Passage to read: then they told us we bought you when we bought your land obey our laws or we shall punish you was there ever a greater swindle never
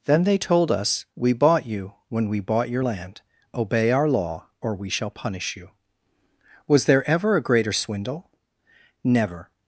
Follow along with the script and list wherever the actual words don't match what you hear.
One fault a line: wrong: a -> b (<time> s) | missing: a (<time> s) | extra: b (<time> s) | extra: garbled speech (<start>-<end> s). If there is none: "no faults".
wrong: laws -> law (4.1 s)